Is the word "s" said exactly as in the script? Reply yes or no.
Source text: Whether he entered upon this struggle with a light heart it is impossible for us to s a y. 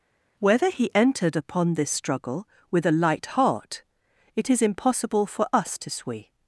no